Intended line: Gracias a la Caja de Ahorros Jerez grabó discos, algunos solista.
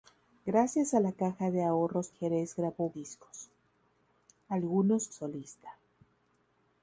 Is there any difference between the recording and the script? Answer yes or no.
no